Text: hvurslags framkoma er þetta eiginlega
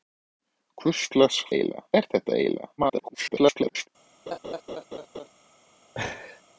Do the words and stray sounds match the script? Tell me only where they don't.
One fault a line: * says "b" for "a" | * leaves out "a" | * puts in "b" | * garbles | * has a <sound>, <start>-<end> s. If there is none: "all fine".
* says "eiginlega" for "framkoma"
* garbles
* has a laugh, 4.3-5.3 s
* has a laugh, 5.9-6.4 s